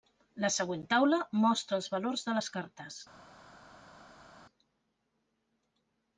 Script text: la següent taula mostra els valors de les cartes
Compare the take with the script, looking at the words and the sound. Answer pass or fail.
pass